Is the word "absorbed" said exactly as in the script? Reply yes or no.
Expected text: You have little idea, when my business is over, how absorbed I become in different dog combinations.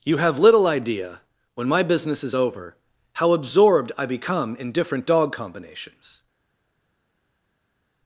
yes